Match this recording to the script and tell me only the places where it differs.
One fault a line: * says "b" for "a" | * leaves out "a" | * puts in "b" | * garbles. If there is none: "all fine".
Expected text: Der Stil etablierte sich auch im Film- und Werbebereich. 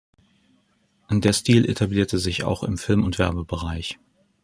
all fine